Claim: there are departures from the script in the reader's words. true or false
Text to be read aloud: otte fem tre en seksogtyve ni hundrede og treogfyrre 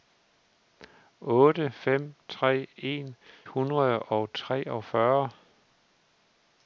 true